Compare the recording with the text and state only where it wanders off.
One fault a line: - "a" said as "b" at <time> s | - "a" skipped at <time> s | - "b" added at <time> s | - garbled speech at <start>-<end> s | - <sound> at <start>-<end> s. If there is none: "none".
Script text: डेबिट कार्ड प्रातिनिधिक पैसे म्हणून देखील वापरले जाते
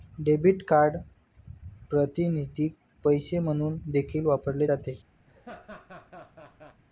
- laugh at 5.3-6.8 s